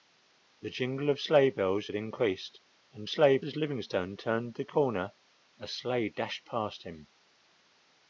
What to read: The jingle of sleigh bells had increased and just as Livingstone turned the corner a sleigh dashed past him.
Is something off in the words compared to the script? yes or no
yes